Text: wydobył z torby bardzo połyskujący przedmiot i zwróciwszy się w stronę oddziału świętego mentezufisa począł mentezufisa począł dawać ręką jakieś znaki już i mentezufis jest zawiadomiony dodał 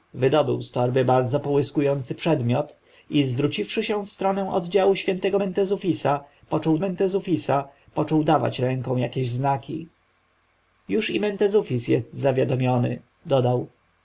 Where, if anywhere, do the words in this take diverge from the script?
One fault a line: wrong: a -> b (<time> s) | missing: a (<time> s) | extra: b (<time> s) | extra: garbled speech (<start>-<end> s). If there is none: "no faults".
no faults